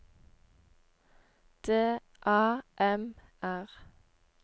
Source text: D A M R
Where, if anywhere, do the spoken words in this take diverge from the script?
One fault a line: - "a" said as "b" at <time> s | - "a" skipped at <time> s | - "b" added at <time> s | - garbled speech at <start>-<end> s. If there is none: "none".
none